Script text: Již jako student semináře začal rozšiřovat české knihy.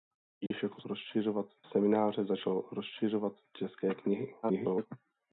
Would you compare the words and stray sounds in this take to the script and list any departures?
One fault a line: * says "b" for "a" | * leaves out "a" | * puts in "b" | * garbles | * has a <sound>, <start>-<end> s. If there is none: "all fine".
* has a dropout, 0.5-0.5 s
* says "rozšiřovat" for "student"
* garbles